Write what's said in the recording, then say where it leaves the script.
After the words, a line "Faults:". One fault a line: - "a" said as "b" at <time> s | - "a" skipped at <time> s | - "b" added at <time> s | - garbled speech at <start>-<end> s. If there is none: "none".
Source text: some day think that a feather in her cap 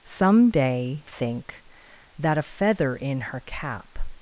some day think that a feather in her cap
Faults:
none